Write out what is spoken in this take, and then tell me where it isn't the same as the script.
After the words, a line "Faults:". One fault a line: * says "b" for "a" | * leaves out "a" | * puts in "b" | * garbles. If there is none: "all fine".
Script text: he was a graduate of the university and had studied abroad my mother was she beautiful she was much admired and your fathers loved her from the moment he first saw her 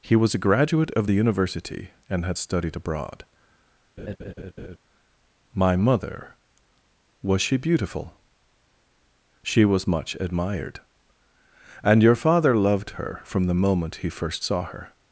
he was a graduate of the university and had studied abroad my mother was she beautiful she was much admired and your father loved her from the moment he first saw her
Faults:
* says "father" for "fathers"